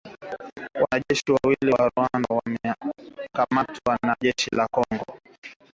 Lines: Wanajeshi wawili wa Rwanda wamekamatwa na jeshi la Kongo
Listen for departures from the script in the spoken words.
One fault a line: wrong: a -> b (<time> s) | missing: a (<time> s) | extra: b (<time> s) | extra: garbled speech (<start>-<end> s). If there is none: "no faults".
no faults